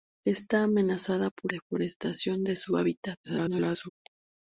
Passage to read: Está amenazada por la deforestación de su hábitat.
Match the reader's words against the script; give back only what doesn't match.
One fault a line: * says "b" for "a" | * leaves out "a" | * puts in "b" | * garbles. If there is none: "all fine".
* leaves out "la"
* garbles